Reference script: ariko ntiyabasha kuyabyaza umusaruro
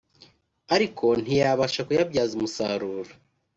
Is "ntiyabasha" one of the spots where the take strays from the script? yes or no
no